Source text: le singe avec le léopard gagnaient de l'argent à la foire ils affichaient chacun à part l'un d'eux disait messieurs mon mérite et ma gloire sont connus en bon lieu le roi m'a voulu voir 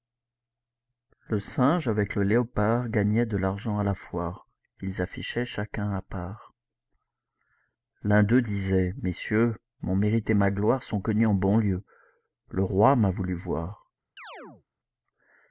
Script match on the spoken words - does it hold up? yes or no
yes